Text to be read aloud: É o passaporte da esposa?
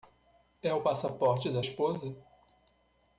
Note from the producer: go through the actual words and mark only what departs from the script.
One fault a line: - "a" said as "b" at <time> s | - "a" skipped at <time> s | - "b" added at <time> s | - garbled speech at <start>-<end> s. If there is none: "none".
none